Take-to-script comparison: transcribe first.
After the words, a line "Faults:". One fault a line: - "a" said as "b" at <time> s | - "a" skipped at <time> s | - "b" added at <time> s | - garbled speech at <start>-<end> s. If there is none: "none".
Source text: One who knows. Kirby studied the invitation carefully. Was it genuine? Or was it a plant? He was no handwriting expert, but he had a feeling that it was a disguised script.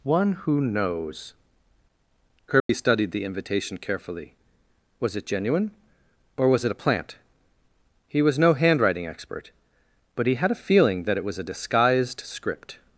One who knows. Kirby studied the invitation carefully. Was it genuine? Or was it a plant? He was no handwriting expert, but he had a feeling that it was a disguised script.
Faults:
none